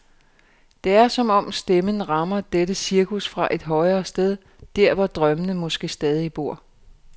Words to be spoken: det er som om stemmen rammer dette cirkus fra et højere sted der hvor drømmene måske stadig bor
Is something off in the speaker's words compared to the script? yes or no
no